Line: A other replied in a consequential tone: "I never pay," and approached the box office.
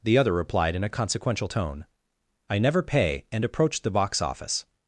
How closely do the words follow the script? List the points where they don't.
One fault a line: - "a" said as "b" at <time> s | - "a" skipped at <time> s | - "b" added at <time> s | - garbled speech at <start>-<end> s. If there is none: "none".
- "A" said as "The" at 0.0 s